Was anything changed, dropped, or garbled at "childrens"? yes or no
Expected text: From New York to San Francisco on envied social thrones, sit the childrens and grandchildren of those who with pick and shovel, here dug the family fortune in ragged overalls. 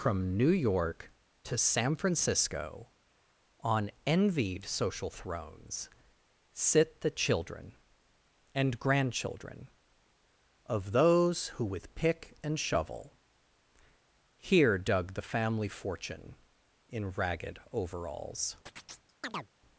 yes